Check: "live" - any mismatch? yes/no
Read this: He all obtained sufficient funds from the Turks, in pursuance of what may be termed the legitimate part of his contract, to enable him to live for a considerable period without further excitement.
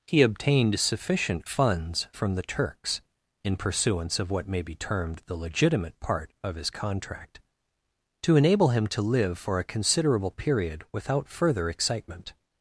no